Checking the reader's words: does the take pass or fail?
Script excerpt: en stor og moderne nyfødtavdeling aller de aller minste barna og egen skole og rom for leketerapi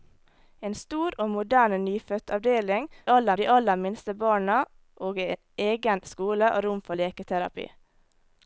pass